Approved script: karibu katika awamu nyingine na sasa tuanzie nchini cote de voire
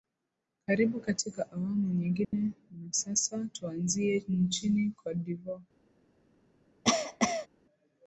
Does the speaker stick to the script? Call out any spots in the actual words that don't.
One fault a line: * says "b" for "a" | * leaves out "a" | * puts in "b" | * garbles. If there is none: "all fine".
all fine